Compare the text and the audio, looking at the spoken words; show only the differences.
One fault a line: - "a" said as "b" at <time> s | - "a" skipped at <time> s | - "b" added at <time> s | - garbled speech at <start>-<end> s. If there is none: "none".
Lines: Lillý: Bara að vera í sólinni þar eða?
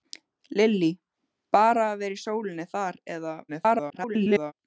- garbled speech at 3.5-4.5 s